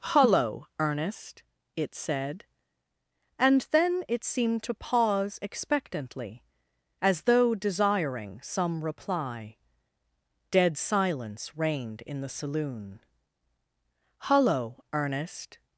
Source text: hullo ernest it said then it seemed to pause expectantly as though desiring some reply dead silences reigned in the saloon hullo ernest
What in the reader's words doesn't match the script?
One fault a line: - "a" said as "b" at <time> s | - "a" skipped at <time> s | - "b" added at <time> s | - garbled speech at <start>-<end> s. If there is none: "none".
- "and" added at 3.4 s
- "silences" said as "silence" at 10.8 s